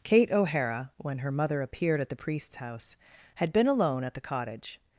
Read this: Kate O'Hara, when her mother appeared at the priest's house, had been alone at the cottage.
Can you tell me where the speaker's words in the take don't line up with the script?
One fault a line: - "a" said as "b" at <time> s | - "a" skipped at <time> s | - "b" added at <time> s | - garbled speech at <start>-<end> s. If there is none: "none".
none